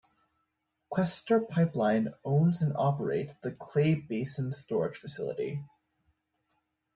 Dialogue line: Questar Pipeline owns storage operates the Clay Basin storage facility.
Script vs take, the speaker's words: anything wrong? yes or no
yes